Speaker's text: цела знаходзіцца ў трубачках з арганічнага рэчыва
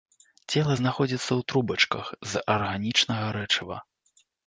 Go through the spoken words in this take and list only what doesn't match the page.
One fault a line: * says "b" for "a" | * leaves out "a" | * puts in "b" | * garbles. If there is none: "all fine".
all fine